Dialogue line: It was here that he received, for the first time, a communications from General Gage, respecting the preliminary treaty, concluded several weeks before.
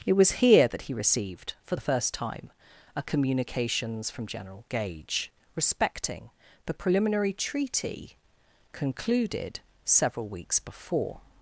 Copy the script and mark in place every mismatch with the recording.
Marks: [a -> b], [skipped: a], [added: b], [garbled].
It was here that he received, for the first time, a communications from General Gage, respecting the preliminary treaty, concluded several weeks before.